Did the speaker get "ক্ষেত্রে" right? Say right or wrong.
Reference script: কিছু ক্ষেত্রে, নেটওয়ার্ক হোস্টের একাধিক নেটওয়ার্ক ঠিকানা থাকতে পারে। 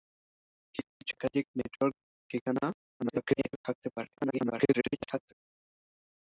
wrong